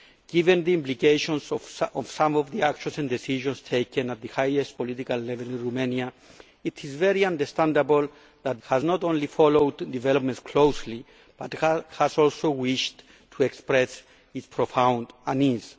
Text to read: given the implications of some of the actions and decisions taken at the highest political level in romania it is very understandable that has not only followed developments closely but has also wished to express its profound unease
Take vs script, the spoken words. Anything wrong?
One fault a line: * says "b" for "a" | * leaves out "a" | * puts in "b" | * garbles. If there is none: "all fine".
all fine